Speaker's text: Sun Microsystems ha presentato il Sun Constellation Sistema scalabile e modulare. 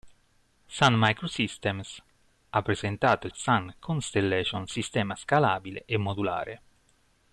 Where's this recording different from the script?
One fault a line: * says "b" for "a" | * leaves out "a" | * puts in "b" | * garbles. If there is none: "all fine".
all fine